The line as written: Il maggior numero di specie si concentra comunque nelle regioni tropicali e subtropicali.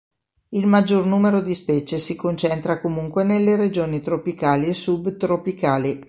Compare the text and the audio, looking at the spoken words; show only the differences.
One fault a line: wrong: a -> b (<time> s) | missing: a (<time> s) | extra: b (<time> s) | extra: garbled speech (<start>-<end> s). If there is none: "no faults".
no faults